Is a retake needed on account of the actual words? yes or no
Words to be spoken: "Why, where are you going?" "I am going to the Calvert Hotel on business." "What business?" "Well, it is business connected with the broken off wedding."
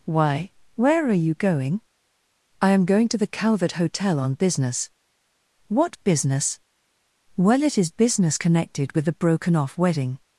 no